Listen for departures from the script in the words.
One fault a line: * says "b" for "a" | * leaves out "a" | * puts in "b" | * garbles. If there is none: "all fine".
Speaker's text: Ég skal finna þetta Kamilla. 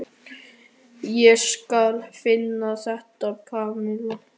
all fine